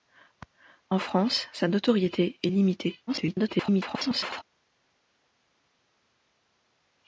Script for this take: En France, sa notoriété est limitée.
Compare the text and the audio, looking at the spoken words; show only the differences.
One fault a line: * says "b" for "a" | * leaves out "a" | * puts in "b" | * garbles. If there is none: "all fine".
* garbles